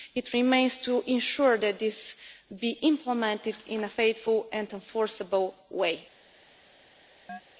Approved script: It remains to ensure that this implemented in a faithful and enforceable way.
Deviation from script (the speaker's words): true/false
true